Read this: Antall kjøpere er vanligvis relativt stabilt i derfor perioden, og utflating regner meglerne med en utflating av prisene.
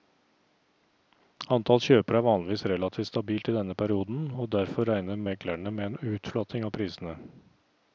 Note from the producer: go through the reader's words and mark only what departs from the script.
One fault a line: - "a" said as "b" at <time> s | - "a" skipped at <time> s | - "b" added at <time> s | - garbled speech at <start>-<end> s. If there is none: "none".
- "derfor" said as "denne" at 3.6 s
- "utflating" said as "derfor" at 4.5 s